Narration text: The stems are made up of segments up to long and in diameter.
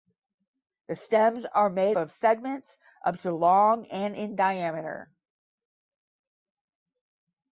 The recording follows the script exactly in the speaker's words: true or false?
false